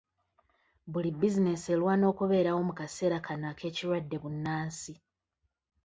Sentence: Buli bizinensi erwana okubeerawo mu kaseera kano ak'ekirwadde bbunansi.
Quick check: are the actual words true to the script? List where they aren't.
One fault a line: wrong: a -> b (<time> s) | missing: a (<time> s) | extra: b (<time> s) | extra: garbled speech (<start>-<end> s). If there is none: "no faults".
no faults